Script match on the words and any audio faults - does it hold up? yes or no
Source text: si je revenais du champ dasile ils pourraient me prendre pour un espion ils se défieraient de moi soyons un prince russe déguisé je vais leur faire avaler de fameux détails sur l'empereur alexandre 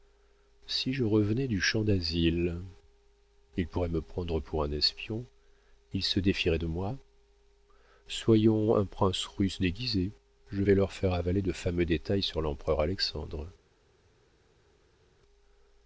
yes